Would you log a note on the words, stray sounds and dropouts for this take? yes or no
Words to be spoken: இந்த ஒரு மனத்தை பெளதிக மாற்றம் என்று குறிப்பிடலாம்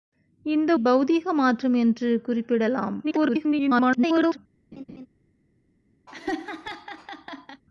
yes